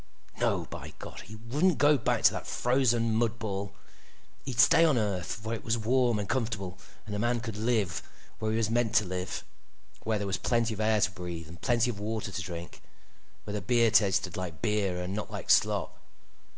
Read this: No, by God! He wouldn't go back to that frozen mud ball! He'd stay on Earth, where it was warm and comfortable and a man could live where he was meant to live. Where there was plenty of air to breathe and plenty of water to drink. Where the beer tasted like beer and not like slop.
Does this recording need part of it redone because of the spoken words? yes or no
no